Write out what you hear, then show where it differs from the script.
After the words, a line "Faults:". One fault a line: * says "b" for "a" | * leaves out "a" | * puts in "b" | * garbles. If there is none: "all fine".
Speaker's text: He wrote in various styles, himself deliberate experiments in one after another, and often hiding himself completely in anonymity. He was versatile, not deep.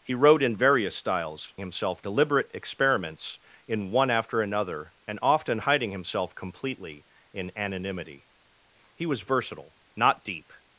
He wrote in various styles, himself deliberate experiments in one after another, and often hiding himself completely in anonymity. He was versatile, not deep.
Faults:
all fine